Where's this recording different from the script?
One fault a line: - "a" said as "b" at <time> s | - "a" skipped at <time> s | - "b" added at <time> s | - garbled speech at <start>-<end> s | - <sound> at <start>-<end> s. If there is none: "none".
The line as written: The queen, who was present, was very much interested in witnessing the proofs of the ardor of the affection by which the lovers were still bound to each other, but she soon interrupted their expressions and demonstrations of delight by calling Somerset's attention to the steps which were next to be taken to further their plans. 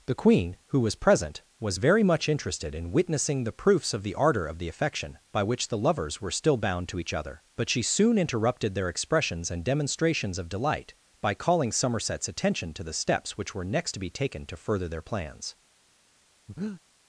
- breath at 16.5-16.8 s